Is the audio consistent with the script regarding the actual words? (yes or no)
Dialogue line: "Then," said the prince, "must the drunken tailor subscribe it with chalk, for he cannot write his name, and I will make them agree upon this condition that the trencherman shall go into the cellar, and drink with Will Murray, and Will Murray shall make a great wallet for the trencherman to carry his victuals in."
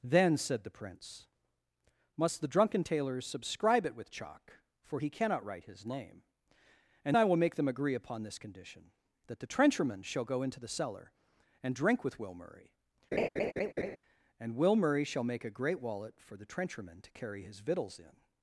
yes